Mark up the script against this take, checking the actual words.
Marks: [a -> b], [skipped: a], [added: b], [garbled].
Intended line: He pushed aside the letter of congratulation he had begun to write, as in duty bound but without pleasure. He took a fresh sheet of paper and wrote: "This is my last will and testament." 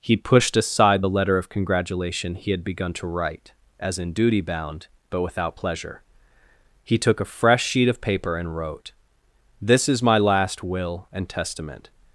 He pushed aside the letter of congratulation he had begun to write, as in duty bound but without pleasure. He took a fresh sheet of paper and wrote: "This is my last will and testament."